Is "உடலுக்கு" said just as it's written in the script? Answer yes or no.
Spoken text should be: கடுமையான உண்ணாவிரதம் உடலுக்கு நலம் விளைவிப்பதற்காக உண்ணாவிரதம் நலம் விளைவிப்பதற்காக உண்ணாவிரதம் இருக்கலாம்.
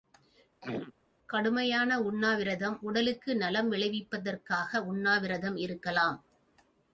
yes